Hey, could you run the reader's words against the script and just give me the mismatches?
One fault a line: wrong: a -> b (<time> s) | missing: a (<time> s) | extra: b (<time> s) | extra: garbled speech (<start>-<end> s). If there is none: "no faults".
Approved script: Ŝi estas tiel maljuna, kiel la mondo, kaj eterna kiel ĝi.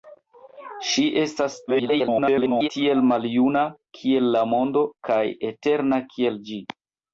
extra: garbled speech (1.7-2.7 s)